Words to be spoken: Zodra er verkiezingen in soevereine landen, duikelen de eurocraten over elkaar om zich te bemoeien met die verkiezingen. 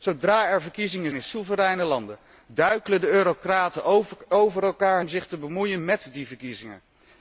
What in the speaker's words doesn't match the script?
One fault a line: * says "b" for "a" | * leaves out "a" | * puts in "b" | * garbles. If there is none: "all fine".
all fine